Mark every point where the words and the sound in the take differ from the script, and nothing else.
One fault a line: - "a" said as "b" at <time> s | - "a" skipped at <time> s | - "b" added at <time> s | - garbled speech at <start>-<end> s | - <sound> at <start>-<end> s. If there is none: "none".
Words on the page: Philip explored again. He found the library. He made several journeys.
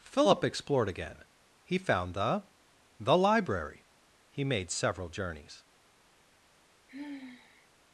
- "the" added at 3.0 s
- sigh at 6.9-7.7 s